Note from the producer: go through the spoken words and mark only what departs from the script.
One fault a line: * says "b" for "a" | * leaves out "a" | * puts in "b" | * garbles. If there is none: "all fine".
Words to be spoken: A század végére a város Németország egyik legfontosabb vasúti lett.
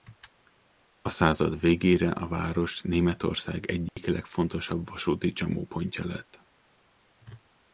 * puts in "csomópontja"